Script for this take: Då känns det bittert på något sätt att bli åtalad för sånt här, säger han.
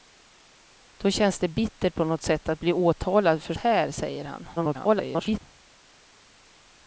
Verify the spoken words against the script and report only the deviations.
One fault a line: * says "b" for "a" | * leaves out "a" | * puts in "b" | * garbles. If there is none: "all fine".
* leaves out "sånt"
* garbles